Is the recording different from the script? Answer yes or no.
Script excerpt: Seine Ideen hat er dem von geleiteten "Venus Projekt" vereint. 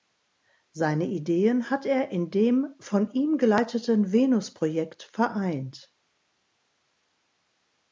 yes